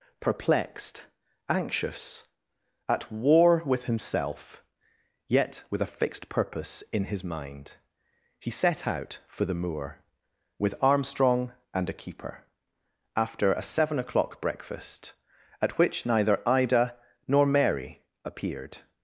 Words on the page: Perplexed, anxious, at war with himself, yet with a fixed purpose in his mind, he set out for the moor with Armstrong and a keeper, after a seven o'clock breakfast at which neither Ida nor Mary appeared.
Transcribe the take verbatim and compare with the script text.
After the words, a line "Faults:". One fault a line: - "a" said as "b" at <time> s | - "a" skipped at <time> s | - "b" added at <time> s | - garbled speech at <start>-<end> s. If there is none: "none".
Perplexed, anxious, at war with himself, yet with a fixed purpose in his mind, he set out for the moor with Armstrong and a keeper, after a seven o'clock breakfast at which neither Ida nor Mary appeared.
Faults:
none